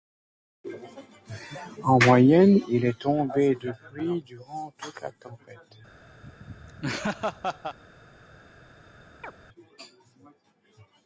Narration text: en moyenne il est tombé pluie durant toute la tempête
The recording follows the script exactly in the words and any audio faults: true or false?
false